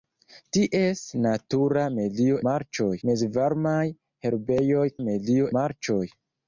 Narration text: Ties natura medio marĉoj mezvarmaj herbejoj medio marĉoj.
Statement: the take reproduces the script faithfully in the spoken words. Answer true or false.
true